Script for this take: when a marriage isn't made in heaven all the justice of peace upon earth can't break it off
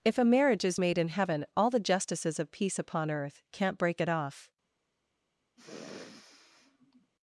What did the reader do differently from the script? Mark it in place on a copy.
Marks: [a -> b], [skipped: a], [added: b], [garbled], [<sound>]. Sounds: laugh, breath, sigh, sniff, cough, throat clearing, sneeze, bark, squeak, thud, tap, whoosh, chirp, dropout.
[when -> if] a marriage [isn't -> is] made in heaven all the [justice -> justices] of peace upon earth can't break it off [sniff]